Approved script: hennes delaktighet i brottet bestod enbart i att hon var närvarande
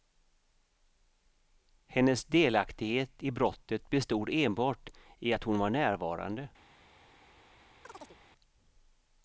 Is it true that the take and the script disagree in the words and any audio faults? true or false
true